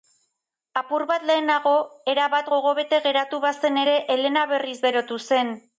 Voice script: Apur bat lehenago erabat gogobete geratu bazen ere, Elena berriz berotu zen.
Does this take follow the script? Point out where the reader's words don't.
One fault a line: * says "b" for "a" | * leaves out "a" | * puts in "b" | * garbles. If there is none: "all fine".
all fine